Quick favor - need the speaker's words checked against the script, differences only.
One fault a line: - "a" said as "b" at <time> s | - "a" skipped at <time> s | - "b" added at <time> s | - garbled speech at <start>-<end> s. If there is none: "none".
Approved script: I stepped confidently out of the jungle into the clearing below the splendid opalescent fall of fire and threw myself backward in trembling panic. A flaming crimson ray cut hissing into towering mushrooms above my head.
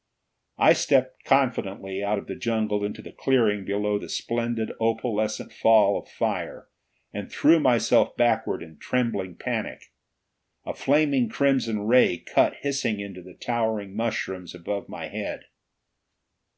- "the" added at 13.2 s